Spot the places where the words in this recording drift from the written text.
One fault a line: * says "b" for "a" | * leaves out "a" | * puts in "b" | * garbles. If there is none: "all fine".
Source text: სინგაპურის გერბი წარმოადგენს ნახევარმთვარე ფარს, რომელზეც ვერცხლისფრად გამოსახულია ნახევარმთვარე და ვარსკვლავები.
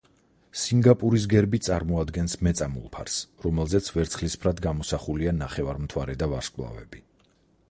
* says "მეწამულ" for "ნახევარმთვარე"